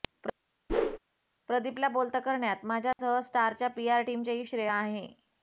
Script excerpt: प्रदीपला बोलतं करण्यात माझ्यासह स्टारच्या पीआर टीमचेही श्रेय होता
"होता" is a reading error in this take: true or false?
true